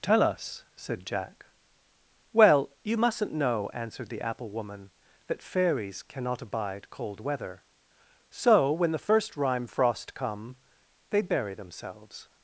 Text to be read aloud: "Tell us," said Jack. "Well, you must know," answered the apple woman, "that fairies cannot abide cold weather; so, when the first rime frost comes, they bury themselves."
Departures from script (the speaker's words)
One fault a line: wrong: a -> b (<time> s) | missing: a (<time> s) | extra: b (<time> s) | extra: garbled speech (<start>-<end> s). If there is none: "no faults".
wrong: must -> mustn't (3.0 s)
wrong: comes -> come (10.1 s)